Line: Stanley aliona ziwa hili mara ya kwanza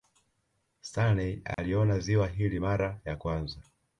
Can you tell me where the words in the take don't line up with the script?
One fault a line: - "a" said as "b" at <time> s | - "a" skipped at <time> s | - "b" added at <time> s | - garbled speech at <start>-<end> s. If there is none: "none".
none